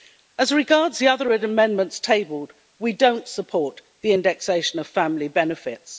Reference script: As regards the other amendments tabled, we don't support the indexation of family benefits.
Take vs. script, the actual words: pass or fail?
pass